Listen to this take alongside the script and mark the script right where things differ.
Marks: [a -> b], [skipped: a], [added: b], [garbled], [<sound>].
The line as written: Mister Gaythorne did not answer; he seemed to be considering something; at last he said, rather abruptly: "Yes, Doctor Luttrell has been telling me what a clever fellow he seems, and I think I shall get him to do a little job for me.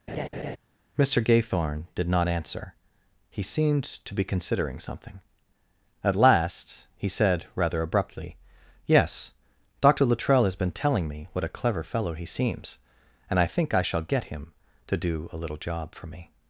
[laugh] Mister Gaythorne did not answer; he seemed to be considering something; at last he said, rather abruptly: "Yes, Doctor Luttrell has been telling me what a clever fellow he seems, and I think I shall get him to do a little job for me.